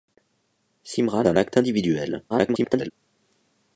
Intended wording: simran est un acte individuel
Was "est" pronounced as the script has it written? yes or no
no